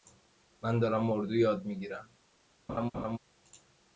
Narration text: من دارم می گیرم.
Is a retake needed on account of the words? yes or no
yes